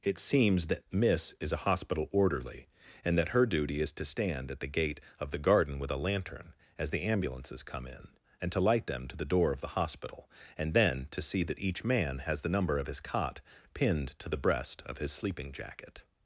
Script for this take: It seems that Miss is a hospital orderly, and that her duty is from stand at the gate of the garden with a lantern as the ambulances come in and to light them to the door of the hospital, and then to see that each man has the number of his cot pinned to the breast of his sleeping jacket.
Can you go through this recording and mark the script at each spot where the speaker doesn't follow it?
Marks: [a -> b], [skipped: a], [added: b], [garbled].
It seems that Miss is a hospital orderly, and that her duty is [from -> to] stand at the gate of the garden with a lantern as the ambulances come in and to light them to the door of the hospital, and then to see that each man has the number of his cot pinned to the breast of his sleeping jacket.